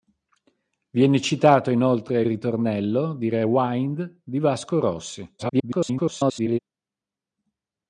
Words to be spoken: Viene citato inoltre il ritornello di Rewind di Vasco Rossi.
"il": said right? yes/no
no